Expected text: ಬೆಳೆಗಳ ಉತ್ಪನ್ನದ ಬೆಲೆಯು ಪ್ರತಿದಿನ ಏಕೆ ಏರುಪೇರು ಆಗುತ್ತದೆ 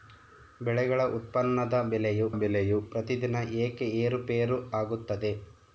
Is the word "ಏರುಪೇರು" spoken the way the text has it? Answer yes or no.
yes